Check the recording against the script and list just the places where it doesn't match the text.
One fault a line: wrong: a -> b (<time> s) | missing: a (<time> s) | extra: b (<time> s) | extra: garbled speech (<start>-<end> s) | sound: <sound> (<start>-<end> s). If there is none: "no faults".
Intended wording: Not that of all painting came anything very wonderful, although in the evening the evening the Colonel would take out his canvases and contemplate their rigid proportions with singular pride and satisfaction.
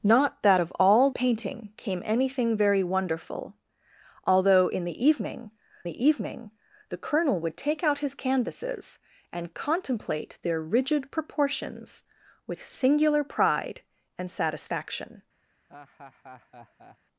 sound: laugh (15.7-17.0 s)